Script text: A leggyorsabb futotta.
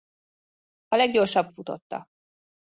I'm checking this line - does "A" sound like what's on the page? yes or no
yes